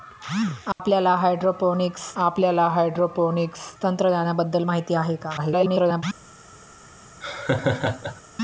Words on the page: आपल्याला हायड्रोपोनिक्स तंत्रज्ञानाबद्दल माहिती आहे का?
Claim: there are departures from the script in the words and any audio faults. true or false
true